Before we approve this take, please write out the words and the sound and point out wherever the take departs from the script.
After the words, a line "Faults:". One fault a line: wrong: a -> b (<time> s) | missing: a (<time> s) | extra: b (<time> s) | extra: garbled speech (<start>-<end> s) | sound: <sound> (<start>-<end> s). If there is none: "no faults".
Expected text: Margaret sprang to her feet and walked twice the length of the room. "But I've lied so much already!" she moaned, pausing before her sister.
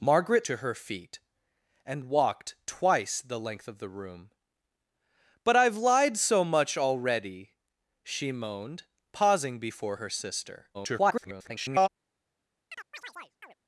Margaret to her feet and walked twice the length of the room. "But I've lied so much already!" she moaned, pausing before her sister. [garbled]
Faults:
missing: sprang (0.5 s)
extra: garbled speech (10.7-11.9 s)
sound: chirp (12.7-13.5 s)